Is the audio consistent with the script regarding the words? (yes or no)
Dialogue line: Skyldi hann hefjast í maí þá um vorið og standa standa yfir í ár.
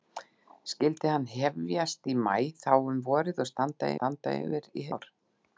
yes